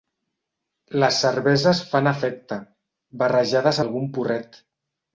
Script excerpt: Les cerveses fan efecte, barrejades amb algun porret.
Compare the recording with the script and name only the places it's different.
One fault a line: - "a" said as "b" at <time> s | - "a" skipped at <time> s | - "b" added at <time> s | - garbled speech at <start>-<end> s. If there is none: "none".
- "amb" skipped at 3.8 s